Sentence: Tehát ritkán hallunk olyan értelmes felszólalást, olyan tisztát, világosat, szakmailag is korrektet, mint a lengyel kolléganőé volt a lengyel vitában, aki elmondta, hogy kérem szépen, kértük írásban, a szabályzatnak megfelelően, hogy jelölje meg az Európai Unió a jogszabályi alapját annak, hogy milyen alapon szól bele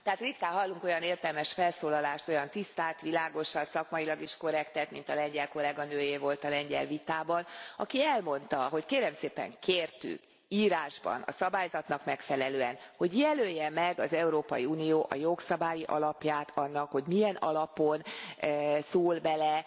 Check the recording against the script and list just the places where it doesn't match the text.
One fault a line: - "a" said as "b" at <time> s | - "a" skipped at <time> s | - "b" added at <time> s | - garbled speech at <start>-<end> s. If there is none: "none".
none